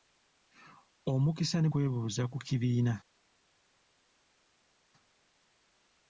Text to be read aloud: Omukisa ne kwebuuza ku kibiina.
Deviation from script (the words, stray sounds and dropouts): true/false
false